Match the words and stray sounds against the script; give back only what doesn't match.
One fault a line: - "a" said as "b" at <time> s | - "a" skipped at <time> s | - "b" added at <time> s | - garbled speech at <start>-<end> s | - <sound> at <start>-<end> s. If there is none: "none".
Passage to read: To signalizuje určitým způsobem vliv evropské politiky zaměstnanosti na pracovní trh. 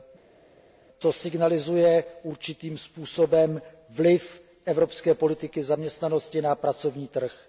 none